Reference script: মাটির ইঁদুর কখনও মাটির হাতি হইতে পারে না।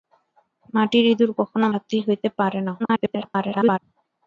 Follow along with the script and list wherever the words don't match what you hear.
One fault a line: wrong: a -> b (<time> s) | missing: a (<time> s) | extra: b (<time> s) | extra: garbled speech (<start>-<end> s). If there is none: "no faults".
missing: মাটির (1.7 s)
extra: garbled speech (2.8-3.8 s)